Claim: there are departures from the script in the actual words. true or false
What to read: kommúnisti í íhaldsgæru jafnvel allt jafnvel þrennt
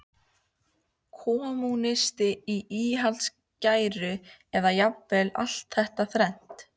true